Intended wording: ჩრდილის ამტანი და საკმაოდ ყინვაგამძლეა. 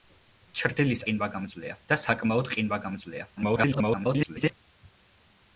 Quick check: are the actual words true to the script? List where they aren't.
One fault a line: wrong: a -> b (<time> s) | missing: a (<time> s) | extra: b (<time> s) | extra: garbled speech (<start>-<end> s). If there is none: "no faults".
wrong: ამტანი -> ყინვაგამძლეა (1.0 s)
extra: garbled speech (3.4-4.5 s)